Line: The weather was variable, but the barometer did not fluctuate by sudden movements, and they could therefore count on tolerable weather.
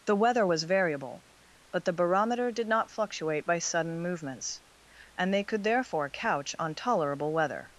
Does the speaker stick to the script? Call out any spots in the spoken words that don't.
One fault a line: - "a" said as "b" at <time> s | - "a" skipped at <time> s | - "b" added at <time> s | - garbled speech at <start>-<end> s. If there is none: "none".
- "count" said as "couch" at 6.1 s